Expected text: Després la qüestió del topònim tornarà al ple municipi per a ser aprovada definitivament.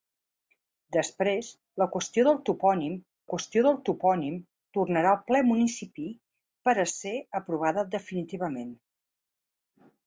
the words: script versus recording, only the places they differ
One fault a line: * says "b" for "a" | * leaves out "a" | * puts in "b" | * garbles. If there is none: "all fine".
* puts in "qüestió del topònim"